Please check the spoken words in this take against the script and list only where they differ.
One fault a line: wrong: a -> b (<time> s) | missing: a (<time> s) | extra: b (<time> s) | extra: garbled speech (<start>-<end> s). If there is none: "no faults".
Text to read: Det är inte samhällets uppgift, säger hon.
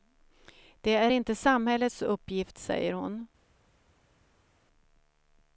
no faults